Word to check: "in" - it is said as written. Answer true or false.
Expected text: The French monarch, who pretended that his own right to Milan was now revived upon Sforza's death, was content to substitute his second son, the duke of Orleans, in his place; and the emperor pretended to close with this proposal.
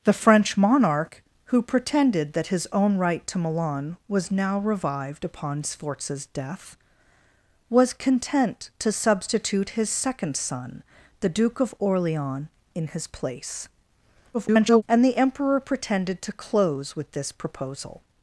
true